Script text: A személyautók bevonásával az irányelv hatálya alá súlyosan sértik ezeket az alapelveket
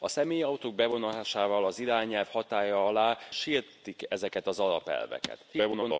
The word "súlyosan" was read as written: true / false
false